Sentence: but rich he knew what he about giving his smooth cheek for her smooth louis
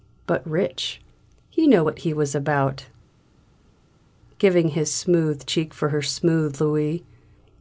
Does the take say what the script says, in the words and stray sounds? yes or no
no